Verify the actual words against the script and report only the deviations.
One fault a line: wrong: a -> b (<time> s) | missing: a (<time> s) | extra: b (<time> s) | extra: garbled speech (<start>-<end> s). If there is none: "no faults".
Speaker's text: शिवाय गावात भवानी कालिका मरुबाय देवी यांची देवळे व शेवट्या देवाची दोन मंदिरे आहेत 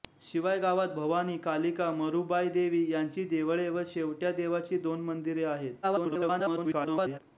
extra: garbled speech (5.8-7.2 s)